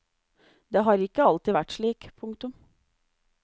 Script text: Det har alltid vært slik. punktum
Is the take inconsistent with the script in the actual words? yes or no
yes